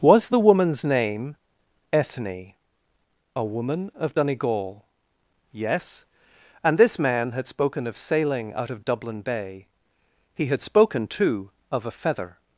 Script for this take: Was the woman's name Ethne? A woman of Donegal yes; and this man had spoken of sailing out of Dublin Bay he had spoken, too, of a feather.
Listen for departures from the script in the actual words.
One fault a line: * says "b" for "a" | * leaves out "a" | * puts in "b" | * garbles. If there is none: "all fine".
all fine